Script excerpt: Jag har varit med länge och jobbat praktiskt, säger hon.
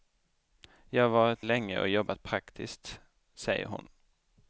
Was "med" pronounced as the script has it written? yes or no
no